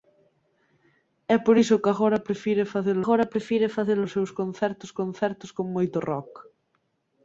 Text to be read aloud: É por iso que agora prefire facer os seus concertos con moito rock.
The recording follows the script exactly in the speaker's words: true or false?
false